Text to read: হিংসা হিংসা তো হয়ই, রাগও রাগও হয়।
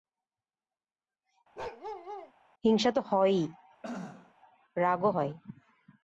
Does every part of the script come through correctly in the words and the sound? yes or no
no